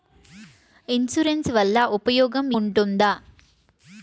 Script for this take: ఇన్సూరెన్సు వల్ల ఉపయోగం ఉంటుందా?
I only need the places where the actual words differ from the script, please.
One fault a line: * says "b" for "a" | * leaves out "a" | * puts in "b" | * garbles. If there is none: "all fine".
all fine